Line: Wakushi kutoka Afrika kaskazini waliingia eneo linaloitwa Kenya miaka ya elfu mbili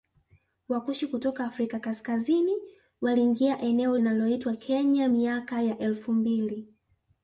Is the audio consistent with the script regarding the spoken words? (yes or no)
yes